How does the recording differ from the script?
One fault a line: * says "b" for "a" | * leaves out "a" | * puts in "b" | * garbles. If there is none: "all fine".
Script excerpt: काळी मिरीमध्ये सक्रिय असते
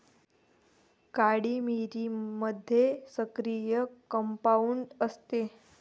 * puts in "कंपाऊंड"